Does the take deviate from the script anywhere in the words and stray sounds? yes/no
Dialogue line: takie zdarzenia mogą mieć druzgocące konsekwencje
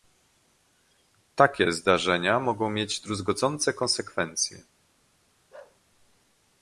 yes